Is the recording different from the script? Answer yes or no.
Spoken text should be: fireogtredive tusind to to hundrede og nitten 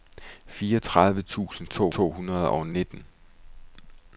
no